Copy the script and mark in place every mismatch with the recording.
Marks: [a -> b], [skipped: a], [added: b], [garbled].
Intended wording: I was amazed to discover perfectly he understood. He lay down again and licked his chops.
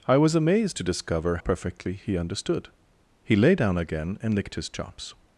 I was amazed to discover perfectly he understood. He lay down again and licked his chops.